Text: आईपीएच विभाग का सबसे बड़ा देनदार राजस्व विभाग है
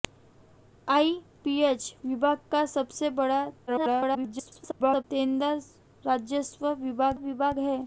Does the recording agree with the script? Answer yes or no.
no